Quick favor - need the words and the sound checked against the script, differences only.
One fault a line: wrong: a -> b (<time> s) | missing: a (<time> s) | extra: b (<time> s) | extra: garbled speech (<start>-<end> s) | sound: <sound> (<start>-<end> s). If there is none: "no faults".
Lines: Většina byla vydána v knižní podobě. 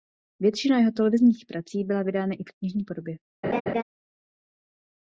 extra: jeho televizních prací (0.8 s)
extra: i (2.3 s)
sound: laugh (3.4-3.8 s)